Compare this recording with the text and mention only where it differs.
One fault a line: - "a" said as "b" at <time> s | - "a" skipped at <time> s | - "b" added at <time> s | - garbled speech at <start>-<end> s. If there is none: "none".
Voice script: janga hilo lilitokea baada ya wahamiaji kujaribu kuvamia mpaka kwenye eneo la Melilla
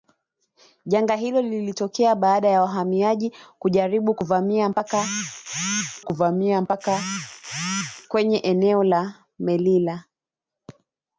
- "kuvamia mpaka" added at 6.0 s